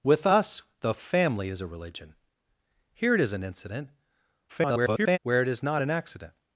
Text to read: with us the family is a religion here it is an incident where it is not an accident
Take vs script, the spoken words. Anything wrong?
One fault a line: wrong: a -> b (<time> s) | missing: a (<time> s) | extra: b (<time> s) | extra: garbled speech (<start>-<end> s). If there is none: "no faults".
extra: garbled speech (4.5-5.2 s)